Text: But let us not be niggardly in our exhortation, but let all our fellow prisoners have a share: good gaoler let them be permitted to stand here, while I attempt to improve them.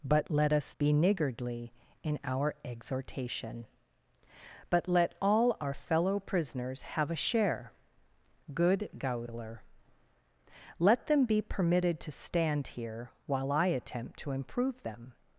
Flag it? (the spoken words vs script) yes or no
yes